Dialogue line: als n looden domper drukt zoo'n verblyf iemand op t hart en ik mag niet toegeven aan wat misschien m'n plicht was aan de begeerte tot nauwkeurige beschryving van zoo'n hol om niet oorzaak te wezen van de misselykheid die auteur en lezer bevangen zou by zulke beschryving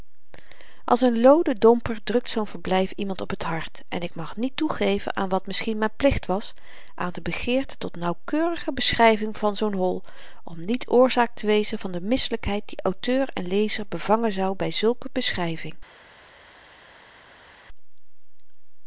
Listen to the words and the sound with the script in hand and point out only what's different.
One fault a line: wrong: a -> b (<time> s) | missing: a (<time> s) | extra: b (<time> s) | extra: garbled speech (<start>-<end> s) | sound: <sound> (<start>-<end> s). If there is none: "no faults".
no faults